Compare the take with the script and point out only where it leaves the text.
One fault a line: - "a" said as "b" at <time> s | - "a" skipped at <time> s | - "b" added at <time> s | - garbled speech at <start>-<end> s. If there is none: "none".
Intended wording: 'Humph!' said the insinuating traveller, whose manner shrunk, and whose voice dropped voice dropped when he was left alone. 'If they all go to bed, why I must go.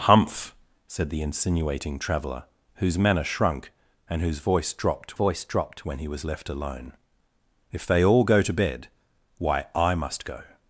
none